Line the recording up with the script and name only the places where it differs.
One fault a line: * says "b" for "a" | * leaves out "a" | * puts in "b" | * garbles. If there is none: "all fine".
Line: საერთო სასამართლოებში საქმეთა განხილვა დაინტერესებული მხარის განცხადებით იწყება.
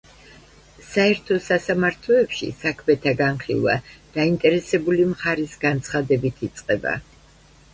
all fine